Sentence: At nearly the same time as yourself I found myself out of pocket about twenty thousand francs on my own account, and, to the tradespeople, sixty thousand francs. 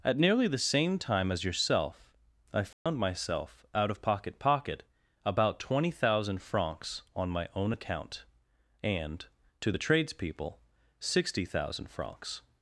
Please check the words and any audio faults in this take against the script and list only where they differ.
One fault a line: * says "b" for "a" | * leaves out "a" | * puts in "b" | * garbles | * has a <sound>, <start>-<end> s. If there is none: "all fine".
* has a dropout, 2.7-2.9 s
* puts in "pocket"